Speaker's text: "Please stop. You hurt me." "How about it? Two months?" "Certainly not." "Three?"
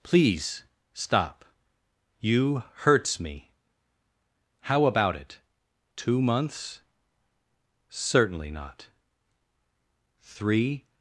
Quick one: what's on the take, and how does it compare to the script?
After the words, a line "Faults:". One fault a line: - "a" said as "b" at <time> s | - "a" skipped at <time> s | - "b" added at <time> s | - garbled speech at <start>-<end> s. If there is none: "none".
"Please stop. You hurts me." "How about it? Two months?" "Certainly not." "Three?"
Faults:
- "hurt" said as "hurts" at 2.8 s